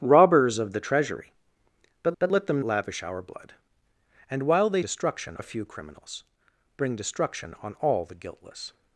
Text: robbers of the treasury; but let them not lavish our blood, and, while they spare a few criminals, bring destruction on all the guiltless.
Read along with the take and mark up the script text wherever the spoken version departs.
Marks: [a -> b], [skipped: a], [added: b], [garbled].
robbers of the treasury; but [added: but] let them [skipped: not] lavish our blood, and, while they [spare -> destruction] a few criminals, bring destruction on all the guiltless.